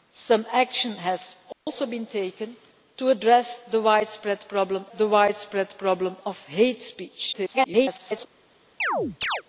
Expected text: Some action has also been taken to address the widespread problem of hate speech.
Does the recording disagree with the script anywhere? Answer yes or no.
yes